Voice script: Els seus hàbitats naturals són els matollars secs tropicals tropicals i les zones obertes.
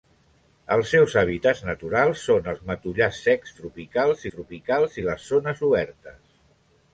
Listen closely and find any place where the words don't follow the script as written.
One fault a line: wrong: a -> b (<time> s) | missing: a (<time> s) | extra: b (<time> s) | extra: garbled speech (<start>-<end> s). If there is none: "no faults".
no faults